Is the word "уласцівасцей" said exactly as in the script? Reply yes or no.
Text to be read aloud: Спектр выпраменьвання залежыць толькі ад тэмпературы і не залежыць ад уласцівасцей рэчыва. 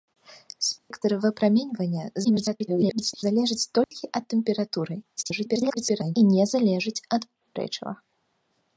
no